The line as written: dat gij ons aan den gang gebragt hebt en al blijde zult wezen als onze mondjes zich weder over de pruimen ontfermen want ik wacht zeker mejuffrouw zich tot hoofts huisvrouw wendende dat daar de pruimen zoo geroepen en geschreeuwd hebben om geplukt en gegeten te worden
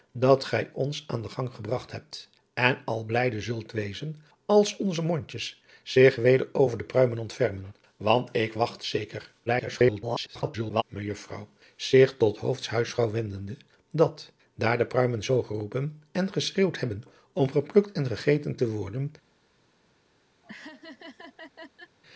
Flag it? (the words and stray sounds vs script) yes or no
yes